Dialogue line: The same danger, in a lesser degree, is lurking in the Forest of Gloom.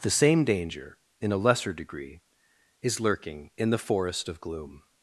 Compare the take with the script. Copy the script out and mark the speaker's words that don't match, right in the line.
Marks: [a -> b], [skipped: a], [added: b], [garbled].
The same danger, in a lesser degree, is lurking in the Forest of Gloom.